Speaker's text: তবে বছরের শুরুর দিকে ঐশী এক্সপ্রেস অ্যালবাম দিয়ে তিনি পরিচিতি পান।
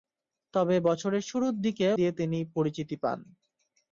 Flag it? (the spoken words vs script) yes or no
yes